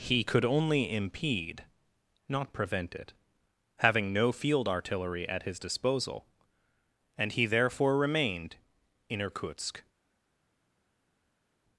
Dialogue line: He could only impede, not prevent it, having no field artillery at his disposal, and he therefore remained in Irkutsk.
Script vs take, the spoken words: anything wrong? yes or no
no